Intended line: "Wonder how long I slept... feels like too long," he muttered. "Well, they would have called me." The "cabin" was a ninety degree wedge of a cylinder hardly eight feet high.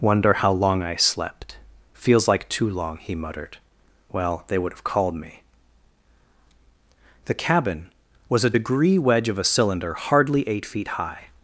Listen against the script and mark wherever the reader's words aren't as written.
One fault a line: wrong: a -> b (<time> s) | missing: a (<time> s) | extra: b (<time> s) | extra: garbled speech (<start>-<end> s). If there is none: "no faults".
missing: ninety (8.6 s)